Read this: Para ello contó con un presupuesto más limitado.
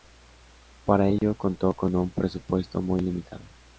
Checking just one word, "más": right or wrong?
wrong